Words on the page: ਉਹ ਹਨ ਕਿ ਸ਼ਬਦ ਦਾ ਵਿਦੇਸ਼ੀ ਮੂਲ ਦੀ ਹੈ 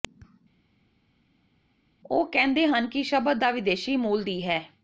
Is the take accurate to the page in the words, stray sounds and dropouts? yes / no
no